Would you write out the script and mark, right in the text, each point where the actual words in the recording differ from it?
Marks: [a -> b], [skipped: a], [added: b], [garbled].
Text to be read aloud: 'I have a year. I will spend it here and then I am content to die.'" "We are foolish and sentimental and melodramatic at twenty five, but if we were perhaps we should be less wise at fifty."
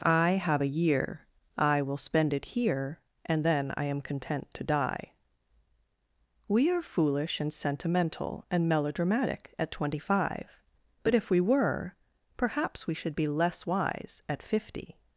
'I have a year. I will spend it here and then I am content to die.'" "We are foolish and sentimental and melodramatic at twenty five, but if we were perhaps we should be less wise at fifty."